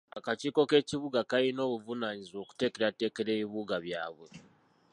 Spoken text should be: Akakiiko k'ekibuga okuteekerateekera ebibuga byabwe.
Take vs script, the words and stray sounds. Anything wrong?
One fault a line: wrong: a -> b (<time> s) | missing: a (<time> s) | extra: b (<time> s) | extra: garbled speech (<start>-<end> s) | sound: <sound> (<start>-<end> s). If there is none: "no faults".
extra: kalina obuvunaanyizibwa (1.3 s)